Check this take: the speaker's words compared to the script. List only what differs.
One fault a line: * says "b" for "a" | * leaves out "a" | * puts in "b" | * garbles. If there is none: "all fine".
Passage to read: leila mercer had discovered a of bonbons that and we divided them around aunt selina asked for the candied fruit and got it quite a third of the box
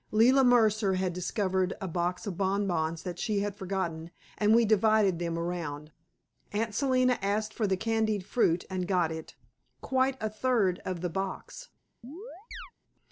* puts in "box"
* puts in "she had forgotten"